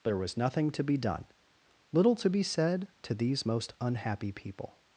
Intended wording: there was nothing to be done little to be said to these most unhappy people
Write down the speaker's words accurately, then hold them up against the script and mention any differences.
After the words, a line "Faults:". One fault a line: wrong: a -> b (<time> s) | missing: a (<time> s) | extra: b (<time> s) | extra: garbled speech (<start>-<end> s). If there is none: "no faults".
there was nothing to be done little to be said to these most unhappy people
Faults:
no faults